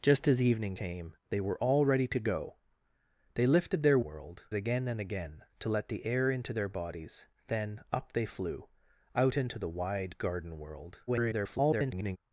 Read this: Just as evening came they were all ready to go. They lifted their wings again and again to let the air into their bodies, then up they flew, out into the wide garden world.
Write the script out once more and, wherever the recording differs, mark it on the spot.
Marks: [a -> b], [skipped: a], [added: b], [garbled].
Just as evening came they were all ready to go. They lifted their [wings -> world] again and again to let the air into their bodies, then up they flew, out into the wide garden world. [garbled]